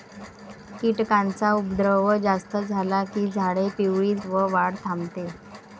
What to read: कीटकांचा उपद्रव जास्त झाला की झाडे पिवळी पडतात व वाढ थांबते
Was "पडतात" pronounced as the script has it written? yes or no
no